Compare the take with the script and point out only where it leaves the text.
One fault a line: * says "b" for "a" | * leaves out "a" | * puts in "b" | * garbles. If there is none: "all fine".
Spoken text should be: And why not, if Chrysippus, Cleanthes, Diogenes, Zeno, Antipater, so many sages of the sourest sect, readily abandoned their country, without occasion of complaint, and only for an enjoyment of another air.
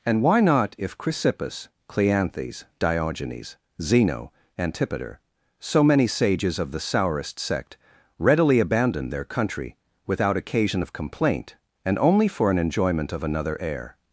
all fine